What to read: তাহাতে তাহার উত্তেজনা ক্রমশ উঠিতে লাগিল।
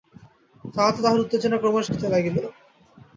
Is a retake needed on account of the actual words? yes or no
no